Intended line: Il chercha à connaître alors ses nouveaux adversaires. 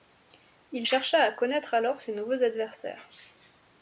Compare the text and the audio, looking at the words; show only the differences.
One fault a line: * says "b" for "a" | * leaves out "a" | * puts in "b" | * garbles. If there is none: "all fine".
all fine